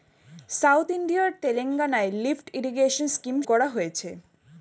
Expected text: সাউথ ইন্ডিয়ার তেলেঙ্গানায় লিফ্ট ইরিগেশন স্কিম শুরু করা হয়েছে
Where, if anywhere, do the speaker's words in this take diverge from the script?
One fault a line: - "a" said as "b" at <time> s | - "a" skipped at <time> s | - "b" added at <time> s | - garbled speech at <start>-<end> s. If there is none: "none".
- "শুরু" skipped at 3.4 s